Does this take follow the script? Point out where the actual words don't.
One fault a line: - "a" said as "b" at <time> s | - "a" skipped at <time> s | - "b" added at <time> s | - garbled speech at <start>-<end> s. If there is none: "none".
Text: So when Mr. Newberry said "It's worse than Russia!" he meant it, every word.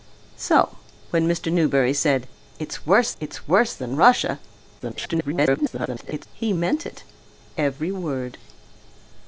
- "it's worse" added at 3.2 s
- garbled speech at 4.8-6.3 s